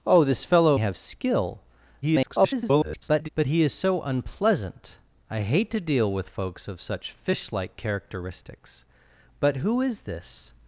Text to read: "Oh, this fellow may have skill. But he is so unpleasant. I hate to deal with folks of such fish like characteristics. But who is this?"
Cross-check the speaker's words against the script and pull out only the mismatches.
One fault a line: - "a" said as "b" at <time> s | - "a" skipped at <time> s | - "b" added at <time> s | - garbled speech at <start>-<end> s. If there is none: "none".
- "may" skipped at 0.8 s
- garbled speech at 2.0-3.3 s